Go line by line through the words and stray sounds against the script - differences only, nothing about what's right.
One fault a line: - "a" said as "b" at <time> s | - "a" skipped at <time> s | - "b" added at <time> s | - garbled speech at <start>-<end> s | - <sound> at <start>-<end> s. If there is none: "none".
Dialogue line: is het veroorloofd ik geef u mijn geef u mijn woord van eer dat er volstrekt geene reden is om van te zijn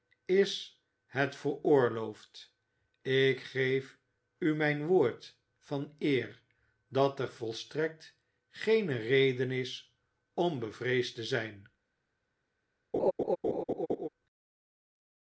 - "geef u mijn" skipped at 4.9 s
- "van" said as "bevreesd" at 10.6 s
- laugh at 12.9-14.1 s